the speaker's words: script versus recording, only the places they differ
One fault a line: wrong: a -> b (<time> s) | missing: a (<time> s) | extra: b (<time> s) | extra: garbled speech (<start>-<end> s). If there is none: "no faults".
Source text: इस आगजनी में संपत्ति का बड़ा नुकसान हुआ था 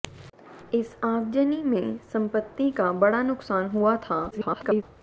extra: garbled speech (4.3-4.8 s)